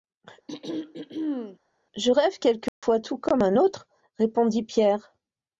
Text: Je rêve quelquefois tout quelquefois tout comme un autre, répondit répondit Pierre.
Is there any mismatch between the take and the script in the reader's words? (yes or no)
yes